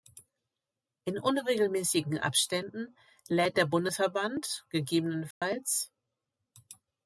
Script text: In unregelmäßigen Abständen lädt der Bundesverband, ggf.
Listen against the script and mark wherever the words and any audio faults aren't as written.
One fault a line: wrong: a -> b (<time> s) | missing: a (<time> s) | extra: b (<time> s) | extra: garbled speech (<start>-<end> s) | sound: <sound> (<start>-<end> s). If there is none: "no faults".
sound: dropout (5.3-5.4 s)